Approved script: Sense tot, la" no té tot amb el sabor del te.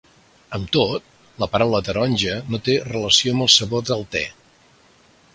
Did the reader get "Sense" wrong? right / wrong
wrong